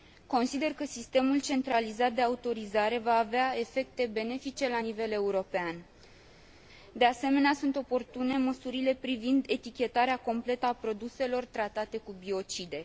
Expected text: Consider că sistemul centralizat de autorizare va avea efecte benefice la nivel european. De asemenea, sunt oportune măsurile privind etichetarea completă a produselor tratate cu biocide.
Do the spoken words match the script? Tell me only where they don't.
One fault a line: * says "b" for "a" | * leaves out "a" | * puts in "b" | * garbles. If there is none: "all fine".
all fine